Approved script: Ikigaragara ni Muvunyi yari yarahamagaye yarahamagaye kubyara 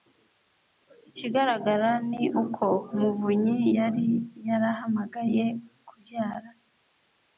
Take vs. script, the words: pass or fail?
fail